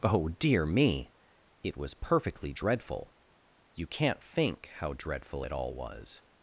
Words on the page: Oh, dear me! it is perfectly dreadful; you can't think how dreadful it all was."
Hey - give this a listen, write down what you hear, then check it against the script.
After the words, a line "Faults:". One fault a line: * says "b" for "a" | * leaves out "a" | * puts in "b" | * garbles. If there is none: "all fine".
Oh, dear me! it was perfectly dreadful; you can't think how dreadful it all was."
Faults:
* says "was" for "is"